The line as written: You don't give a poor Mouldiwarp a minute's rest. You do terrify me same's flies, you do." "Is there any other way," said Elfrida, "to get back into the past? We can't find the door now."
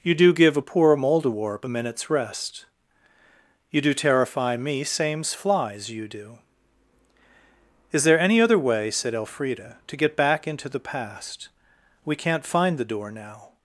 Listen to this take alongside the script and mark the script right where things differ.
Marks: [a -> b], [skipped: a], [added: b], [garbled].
You [don't -> do] give a poor Mouldiwarp a minute's rest. You do terrify me same's flies, you do." "Is there any other way," said Elfrida, "to get back into the past? We can't find the door now."